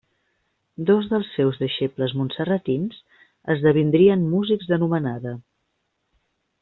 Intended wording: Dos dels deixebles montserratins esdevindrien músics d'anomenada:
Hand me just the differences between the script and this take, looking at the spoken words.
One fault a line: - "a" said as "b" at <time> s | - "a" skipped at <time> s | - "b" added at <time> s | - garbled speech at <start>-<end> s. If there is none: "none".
- "seus" added at 1.3 s